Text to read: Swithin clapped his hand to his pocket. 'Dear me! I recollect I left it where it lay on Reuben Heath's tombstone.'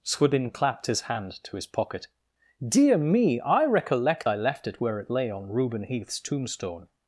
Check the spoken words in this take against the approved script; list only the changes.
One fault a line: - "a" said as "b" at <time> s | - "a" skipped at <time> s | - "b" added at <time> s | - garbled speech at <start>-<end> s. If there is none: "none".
none